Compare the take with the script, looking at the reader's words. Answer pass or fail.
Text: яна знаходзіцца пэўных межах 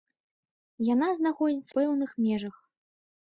pass